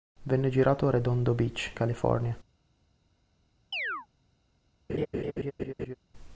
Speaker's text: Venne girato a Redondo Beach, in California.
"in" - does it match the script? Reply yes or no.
no